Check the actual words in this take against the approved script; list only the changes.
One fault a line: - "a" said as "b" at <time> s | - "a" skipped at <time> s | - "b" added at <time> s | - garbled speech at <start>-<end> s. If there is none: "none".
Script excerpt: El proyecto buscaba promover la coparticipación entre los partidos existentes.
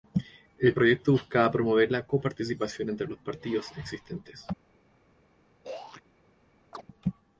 none